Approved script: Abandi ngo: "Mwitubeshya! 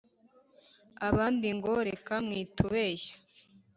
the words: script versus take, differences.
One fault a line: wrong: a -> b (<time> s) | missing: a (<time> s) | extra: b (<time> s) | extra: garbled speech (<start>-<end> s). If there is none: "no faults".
extra: Reka (1.9 s)